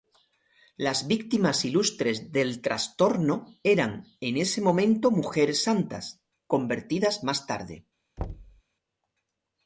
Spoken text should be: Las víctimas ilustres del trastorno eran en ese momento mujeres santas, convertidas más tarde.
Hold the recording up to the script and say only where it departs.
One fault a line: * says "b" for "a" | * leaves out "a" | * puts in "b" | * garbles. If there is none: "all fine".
all fine